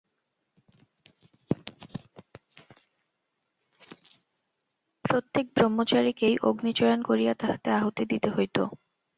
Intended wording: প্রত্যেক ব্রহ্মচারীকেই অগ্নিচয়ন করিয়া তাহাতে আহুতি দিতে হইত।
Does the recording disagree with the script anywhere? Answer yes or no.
no